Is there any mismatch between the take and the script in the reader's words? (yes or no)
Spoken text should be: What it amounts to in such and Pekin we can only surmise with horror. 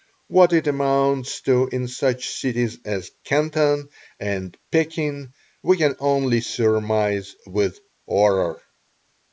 yes